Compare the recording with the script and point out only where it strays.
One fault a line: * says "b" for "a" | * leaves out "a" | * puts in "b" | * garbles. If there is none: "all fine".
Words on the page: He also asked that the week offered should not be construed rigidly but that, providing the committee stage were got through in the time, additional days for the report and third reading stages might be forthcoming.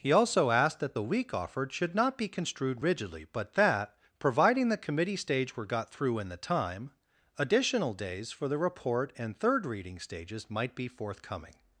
all fine